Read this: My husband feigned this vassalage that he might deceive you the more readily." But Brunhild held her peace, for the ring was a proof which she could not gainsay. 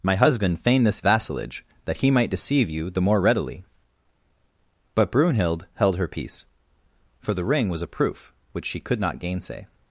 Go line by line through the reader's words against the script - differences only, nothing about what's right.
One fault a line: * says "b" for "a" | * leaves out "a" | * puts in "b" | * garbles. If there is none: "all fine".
all fine